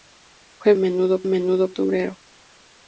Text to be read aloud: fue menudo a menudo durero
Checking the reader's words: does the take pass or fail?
pass